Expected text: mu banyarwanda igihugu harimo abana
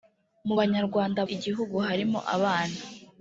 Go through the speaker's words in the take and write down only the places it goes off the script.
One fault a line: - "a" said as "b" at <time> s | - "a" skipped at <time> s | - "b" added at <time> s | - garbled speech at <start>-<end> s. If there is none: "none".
none